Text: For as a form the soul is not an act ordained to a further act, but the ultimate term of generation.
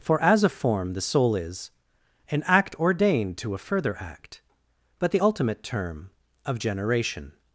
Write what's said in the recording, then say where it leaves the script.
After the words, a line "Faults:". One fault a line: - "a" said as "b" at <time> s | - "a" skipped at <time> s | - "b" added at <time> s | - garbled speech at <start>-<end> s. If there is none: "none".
For as a form the soul is an act ordained to a further act, but the ultimate term of generation.
Faults:
- "not" skipped at 1.7 s